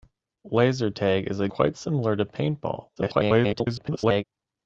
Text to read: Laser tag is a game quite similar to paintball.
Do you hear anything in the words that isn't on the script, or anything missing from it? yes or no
yes